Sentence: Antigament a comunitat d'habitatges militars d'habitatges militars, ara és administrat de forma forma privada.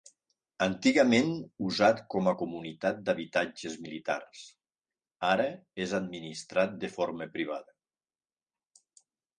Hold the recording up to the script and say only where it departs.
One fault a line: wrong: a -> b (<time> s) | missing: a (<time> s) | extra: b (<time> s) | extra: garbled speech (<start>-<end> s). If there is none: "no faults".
extra: usat com (1.7 s)
missing: d'habitatges militars (4.4 s)
missing: forma (7.3 s)